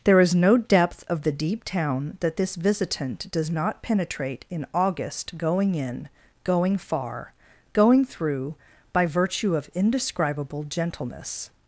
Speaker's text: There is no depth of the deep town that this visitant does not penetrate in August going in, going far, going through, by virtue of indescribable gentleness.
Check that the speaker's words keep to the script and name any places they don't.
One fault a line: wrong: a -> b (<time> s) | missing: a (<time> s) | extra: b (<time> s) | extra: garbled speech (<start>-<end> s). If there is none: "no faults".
no faults